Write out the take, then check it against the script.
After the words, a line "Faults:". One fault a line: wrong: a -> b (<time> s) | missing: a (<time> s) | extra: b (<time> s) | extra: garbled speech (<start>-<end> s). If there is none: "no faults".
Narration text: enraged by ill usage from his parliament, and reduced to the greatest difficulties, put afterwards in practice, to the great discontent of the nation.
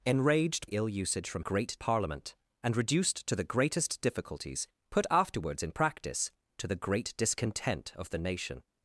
enraged ill usage from great parliament, and reduced to the greatest difficulties, put afterwards in practice, to the great discontent of the nation.
Faults:
missing: by (0.7 s)
wrong: his -> great (1.4 s)